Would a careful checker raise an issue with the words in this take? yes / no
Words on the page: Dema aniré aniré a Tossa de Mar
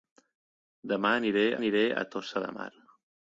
no